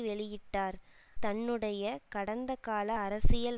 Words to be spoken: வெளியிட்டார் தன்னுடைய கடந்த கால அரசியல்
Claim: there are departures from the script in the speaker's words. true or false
false